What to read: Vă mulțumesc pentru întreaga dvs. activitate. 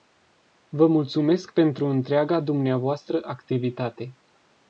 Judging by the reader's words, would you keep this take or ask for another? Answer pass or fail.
pass